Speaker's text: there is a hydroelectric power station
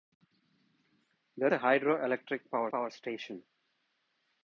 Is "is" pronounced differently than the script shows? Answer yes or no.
yes